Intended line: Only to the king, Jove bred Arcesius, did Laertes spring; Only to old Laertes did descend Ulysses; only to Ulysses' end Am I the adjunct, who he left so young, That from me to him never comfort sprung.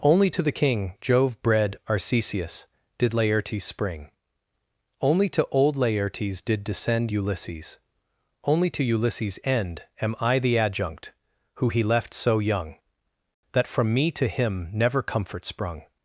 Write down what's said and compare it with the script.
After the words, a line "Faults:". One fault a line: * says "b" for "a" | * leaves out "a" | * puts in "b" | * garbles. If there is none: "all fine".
Only to the king, Jove bred Arcesius, did Laertes spring; Only to old Laertes did descend Ulysses; only to Ulysses' end Am I the adjunct, who he left so young, That from me to him never comfort sprung.
Faults:
all fine